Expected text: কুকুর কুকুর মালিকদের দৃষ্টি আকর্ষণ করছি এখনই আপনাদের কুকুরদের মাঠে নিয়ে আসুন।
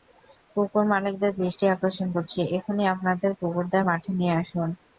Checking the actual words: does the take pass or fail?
fail